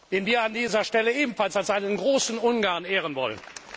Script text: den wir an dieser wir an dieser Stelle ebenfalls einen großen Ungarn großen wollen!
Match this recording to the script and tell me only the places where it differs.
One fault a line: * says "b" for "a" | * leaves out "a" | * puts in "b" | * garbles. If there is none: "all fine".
* leaves out "wir an dieser"
* puts in "als"
* says "ehren" for "großen"